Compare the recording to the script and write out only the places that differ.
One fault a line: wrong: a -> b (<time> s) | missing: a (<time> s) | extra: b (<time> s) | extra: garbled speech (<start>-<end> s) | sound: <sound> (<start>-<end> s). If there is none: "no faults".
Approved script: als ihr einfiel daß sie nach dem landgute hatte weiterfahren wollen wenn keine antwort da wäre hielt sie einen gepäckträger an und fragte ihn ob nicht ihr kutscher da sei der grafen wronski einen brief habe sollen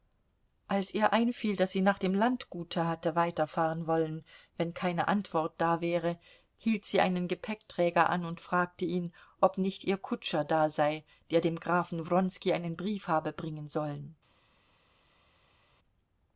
extra: dem (11.4 s)
extra: bringen (13.3 s)